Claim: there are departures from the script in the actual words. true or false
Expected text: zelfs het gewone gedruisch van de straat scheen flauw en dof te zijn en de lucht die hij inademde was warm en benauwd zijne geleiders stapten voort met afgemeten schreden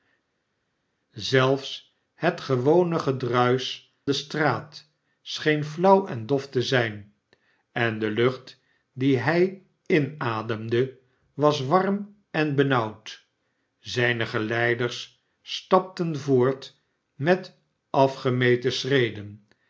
true